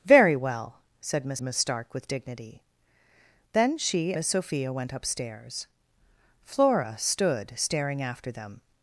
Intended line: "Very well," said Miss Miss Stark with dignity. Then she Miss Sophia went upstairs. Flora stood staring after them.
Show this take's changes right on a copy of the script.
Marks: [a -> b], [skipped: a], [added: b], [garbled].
"Very well," said Miss Miss Stark with dignity. Then she Miss Sophia went upstairs. Flora stood staring after them.